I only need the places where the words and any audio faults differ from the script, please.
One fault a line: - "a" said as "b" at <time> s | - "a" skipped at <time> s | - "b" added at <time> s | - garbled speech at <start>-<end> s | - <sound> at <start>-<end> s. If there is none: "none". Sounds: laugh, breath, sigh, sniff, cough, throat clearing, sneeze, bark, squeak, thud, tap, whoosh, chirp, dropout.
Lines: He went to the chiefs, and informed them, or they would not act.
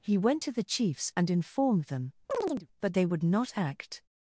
- chirp at 2.3-2.7 s
- "or" said as "but" at 2.8 s